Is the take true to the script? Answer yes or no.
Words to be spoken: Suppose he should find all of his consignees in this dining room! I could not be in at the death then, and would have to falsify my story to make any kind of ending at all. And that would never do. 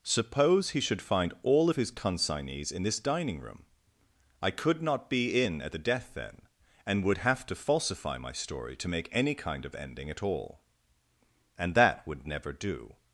yes